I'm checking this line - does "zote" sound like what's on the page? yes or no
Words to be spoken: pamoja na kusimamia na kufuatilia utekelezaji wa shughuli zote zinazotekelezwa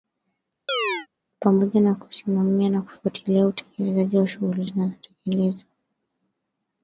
no